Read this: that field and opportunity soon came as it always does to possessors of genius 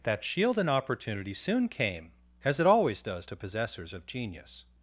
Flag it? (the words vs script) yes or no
yes